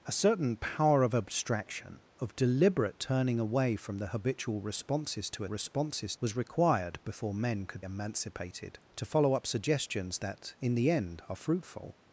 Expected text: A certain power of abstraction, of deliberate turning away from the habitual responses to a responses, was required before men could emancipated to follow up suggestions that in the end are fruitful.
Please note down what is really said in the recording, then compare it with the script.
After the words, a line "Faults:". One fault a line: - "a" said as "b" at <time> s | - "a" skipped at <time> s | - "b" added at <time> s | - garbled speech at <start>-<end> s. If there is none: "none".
A certain power of abstraction, of deliberate turning away from the habitual responses to a responses, was required before men could emancipated to follow up suggestions that in the end are fruitful.
Faults:
none